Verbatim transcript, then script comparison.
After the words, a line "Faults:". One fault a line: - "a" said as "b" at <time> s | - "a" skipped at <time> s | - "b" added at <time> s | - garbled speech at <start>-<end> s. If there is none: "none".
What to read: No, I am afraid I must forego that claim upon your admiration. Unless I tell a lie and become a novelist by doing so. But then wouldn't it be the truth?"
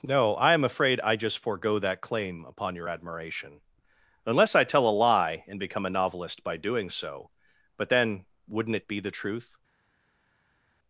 No, I am afraid I just forego that claim upon your admiration. Unless I tell a lie and become a novelist by doing so. But then wouldn't it be the truth?"
Faults:
- "must" said as "just" at 1.1 s